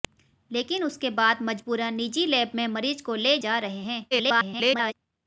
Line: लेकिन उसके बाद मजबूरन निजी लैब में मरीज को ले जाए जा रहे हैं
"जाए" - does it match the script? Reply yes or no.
no